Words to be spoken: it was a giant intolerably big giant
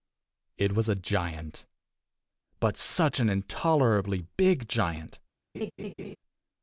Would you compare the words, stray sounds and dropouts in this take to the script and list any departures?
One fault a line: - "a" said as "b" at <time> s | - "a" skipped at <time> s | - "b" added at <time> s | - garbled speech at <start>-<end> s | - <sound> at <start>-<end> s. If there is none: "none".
- "but such an" added at 2.6 s
- laugh at 5.5-6.2 s